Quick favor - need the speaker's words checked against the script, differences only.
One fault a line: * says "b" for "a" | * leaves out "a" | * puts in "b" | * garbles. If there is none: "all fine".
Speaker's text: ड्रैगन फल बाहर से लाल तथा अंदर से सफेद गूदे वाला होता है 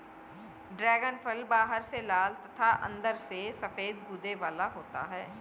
all fine